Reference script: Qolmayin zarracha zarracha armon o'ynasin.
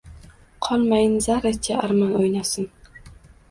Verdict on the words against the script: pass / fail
fail